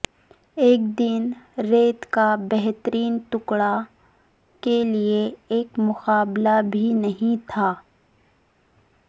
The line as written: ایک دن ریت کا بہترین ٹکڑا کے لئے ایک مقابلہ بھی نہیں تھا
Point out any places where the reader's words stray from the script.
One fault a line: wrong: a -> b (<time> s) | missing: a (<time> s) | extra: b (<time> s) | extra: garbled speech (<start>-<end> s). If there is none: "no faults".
no faults